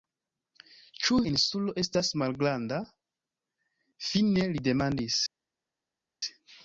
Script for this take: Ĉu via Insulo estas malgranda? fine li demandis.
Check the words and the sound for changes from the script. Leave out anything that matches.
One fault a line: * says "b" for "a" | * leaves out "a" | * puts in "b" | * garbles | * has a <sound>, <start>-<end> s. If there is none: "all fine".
* leaves out "via"